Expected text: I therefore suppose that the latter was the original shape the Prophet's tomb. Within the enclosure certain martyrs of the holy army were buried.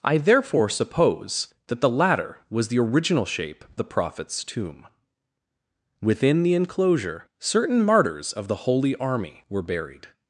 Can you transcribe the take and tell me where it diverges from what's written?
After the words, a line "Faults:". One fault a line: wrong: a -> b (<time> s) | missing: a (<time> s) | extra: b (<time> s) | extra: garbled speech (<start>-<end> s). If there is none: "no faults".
I therefore suppose that the latter was the original shape the Prophet's tomb. Within the enclosure certain martyrs of the holy army were buried.
Faults:
no faults